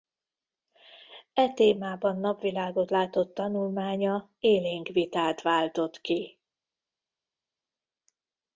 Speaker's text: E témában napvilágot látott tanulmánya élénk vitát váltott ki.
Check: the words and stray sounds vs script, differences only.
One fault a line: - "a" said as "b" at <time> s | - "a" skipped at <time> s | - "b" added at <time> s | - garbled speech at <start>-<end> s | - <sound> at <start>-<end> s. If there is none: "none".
none